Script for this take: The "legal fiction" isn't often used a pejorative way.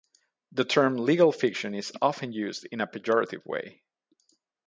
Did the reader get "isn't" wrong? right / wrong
wrong